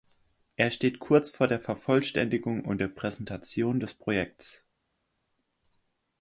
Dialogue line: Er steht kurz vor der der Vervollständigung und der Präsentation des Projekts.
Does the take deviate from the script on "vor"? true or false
false